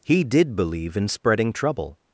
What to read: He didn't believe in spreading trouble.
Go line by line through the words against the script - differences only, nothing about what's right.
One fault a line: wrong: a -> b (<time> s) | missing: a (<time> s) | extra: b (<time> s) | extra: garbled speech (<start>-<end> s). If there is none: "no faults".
wrong: didn't -> did (0.2 s)